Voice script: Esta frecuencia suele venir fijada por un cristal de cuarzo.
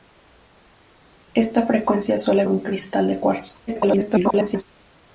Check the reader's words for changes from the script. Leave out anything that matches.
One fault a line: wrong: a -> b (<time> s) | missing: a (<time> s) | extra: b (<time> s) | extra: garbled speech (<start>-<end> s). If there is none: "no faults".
missing: venir fijada por (2.4 s)
extra: garbled speech (3.7-4.6 s)